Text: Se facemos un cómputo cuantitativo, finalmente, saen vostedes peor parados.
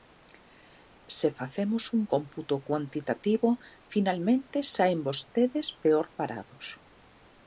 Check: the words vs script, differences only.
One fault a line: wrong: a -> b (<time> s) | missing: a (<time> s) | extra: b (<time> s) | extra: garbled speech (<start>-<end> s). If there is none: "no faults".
no faults